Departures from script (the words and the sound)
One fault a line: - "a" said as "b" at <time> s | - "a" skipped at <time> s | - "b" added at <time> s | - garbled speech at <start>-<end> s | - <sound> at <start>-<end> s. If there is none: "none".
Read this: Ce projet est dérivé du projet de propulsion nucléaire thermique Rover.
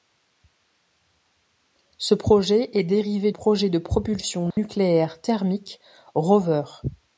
- "du" skipped at 3.3 s
- dropout at 4.5-4.6 s